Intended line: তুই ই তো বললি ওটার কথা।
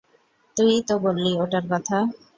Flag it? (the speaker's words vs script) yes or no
no